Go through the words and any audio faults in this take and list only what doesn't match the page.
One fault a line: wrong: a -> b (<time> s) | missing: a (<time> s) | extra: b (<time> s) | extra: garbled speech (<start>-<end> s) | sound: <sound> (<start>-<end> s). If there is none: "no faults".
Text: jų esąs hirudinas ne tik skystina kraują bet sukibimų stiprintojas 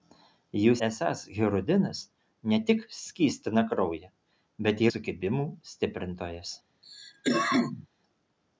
sound: cough (6.8-7.9 s)